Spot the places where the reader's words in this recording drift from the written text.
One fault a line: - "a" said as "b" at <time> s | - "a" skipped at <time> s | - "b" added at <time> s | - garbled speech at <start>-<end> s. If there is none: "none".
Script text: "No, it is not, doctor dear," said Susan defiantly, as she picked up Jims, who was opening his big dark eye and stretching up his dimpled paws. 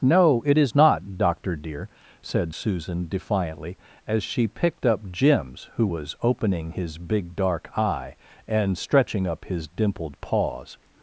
none